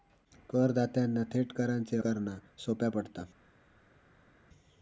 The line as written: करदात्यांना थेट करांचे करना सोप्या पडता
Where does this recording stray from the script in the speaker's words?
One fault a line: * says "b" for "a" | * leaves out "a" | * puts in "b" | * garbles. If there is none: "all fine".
all fine